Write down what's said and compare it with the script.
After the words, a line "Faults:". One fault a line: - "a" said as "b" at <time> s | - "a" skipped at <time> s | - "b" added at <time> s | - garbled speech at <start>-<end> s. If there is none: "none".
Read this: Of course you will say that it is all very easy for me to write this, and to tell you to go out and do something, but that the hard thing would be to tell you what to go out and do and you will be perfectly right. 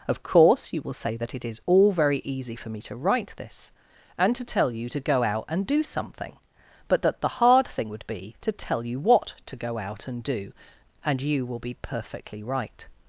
Of course you will say that it is all very easy for me to write this, and to tell you to go out and do something, but that the hard thing would be to tell you what to go out and do and you will be perfectly right.
Faults:
none